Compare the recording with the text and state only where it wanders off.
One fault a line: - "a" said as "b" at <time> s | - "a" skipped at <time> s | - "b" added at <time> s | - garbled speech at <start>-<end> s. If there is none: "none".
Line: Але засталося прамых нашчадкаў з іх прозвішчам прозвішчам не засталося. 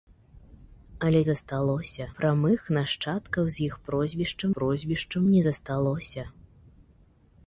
none